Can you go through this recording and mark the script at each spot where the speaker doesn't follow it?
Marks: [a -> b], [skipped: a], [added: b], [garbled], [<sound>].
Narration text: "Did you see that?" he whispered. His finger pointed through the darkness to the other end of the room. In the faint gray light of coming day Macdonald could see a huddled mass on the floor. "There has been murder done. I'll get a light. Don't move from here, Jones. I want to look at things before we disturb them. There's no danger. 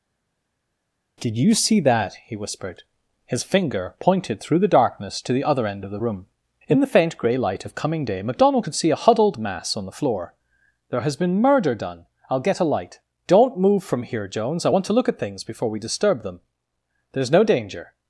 "Did you see that?" he whispered. His finger pointed through the darkness to the other end of the room. In the faint gray light of coming day Macdonald could see a huddled mass on the floor. "There has been murder done. I'll get a light. Don't move from here, Jones. I want to look at things before we disturb them. There's no danger.